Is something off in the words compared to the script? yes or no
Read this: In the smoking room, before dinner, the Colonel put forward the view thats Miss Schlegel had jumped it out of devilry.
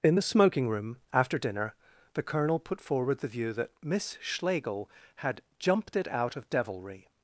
yes